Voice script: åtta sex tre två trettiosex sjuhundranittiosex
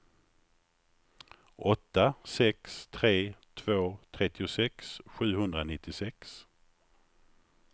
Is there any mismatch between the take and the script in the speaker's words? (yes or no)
no